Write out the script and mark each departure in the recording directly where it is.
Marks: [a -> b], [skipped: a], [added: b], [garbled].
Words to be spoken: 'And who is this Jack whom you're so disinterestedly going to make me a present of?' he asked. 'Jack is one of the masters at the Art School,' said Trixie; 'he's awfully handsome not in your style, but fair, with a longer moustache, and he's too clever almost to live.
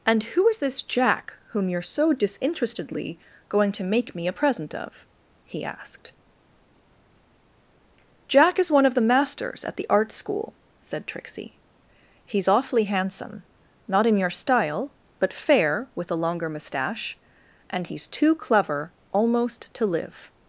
'And who is this Jack whom you're so disinterestedly going to make me a present of?' he asked. 'Jack is one of the masters at the Art School,' said Trixie; 'he's awfully handsome not in your style, but fair, with a longer moustache, and he's too clever almost to live.